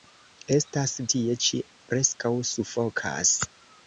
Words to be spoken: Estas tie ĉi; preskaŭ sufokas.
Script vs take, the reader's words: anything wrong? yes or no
no